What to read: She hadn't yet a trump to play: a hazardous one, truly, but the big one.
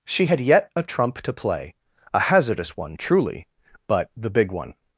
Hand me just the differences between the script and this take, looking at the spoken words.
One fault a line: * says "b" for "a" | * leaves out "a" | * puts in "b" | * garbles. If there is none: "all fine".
* says "had" for "hadn't"